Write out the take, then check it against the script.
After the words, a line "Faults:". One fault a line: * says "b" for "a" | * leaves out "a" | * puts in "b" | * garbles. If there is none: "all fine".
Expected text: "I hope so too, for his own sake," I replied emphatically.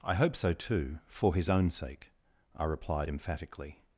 "I hope so too, for his own sake," I replied emphatically.
Faults:
all fine